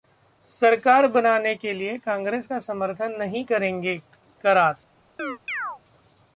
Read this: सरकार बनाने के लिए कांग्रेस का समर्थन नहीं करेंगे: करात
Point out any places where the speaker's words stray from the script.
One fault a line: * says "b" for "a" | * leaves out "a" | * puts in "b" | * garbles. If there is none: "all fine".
all fine